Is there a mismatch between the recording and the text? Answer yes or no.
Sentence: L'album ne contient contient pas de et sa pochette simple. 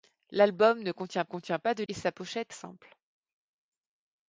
no